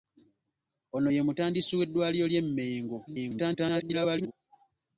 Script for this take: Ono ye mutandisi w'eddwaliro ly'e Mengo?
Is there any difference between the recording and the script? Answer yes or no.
yes